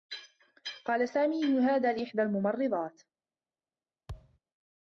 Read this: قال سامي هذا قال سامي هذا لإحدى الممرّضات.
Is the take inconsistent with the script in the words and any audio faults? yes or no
yes